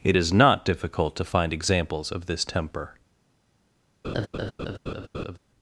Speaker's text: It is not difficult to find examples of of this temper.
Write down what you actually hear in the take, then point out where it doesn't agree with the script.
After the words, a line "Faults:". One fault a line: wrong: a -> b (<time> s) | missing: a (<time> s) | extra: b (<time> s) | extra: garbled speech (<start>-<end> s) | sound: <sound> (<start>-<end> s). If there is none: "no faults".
It is not difficult to find examples of this temper.
Faults:
missing: of (2.3 s)
sound: laugh (4.0-5.4 s)